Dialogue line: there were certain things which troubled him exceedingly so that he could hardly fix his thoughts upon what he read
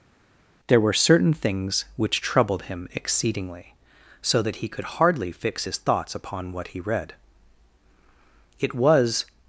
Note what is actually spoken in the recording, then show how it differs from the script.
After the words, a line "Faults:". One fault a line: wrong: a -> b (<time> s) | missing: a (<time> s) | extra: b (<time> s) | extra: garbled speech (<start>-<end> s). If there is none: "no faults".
there were certain things which troubled him exceedingly so that he could hardly fix his thoughts upon what he read it was
Faults:
extra: it was (8.6 s)